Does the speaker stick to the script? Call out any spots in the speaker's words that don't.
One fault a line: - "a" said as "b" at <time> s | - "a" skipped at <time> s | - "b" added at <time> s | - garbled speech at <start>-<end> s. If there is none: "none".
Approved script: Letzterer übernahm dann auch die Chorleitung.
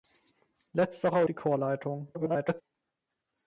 - "übernahm dann auch" skipped at 1.2 s
- garbled speech at 2.1-2.6 s